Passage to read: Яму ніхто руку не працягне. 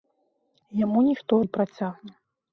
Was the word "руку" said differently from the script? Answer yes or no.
yes